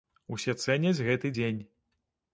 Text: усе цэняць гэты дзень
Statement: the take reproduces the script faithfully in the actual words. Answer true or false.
true